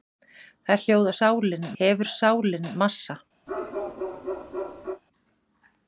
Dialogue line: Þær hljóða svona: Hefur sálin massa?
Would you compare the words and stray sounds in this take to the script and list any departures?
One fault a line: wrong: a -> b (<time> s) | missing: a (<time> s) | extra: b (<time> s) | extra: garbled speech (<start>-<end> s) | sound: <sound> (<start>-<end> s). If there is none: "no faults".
wrong: svona -> sálin (1.2 s)
sound: bark (3.5-5.0 s)